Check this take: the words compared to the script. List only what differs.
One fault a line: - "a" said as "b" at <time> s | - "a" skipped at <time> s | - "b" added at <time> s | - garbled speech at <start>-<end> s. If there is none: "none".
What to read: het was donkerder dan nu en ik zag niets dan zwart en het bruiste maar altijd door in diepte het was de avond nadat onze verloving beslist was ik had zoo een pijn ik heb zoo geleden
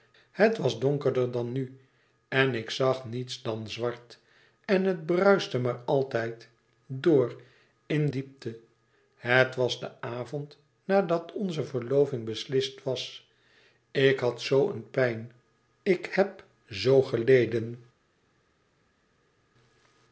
none